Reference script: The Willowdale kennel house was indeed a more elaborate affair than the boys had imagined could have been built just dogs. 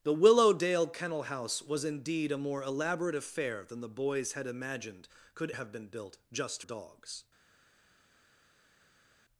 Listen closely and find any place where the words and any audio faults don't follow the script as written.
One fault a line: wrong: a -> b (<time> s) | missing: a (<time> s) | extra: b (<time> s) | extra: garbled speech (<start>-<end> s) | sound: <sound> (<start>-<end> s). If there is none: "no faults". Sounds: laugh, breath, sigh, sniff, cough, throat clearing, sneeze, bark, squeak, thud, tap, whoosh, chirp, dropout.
no faults